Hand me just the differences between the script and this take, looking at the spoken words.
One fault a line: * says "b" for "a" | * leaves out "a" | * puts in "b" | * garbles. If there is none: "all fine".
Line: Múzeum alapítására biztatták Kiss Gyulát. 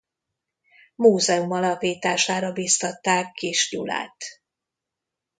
all fine